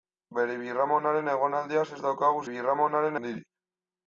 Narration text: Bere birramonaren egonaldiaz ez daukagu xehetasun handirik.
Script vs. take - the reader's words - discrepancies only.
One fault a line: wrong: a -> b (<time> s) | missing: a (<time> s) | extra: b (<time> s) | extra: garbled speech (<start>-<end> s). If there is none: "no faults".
wrong: xehetasun -> birramonaren (2.5 s)